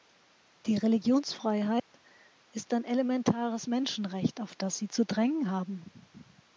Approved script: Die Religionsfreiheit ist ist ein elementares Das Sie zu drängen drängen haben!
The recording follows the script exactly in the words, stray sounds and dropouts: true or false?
false